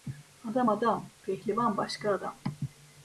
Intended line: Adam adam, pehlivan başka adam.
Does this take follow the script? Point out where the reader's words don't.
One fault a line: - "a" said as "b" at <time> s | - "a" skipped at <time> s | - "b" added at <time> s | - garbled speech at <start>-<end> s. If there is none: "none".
none